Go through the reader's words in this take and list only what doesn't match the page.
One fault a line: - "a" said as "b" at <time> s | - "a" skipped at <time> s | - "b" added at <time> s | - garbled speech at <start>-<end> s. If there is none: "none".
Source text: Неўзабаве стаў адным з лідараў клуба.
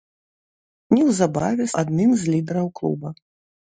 - "стаў" skipped at 1.7 s